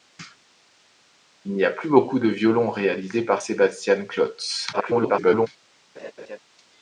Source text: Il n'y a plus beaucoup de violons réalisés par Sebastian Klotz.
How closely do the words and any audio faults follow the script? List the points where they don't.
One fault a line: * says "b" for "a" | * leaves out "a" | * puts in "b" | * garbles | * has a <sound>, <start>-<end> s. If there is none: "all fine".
* garbles
* has a laugh, 6.0-6.4 s